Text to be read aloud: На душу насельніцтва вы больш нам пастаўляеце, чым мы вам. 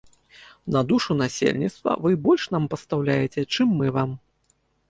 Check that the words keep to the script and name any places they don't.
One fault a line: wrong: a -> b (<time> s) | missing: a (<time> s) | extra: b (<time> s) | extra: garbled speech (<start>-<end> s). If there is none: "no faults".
no faults